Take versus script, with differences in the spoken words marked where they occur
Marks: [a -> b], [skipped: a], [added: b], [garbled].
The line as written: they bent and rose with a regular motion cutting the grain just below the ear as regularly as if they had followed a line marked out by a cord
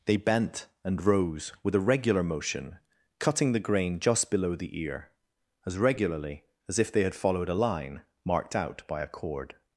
they bent and rose with a regular motion cutting the grain just below the ear as regularly as if they had followed a line marked out by a cord